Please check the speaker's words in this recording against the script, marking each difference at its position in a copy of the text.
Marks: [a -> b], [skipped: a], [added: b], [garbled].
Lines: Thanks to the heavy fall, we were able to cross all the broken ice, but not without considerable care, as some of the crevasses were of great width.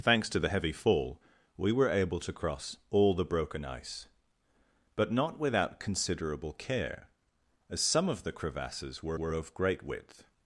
Thanks to the heavy fall, we were able to cross all the broken ice, but not without considerable care, as some of the crevasses were [added: were] of great width.